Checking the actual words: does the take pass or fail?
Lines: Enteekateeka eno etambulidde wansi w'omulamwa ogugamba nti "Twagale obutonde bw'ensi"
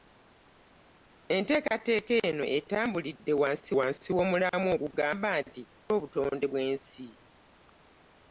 fail